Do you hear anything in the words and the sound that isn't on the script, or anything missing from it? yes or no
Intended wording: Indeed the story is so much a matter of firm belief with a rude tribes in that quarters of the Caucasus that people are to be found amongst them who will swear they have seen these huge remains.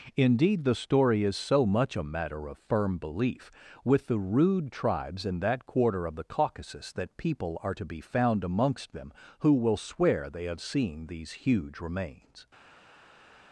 yes